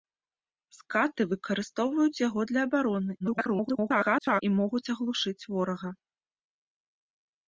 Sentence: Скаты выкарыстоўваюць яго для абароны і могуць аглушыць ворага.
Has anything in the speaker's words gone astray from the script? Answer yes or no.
yes